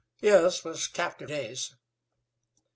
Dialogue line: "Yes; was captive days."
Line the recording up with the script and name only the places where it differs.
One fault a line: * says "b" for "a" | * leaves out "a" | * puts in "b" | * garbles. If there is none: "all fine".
all fine